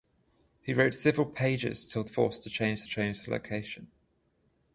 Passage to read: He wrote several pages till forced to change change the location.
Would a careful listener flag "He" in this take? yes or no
no